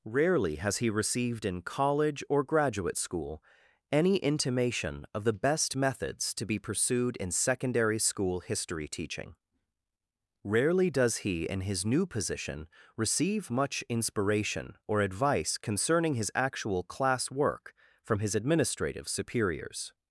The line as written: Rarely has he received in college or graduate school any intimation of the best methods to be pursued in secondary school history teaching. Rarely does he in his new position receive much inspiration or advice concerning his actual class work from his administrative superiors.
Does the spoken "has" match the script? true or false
true